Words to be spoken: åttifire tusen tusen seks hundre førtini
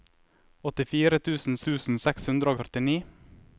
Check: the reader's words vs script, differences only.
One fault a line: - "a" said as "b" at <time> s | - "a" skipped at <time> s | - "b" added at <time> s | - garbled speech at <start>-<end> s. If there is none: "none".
none